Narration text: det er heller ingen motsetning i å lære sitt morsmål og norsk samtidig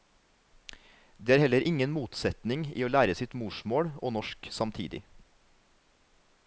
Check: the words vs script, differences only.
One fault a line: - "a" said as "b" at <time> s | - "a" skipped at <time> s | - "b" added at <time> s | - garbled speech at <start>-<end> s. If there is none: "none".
none